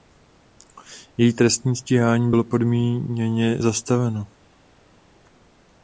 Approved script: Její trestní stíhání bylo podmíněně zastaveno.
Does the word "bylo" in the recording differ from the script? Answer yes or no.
no